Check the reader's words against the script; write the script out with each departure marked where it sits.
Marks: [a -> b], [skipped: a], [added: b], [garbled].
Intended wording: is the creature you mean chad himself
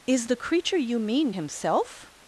is the creature you mean [skipped: chad] himself